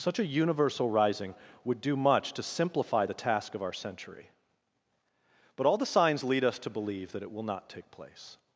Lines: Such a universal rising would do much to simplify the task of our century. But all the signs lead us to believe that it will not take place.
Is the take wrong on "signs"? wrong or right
right